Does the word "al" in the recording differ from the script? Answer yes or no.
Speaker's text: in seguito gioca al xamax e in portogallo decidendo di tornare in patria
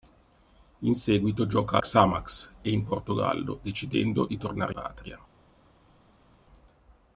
yes